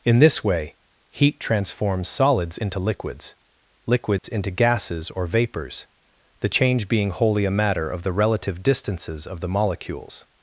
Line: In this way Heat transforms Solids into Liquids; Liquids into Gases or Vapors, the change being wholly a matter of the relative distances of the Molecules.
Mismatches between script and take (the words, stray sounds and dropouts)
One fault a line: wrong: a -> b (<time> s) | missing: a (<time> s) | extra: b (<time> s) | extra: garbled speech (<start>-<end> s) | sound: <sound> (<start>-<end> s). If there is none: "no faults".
sound: dropout (4.2-4.2 s)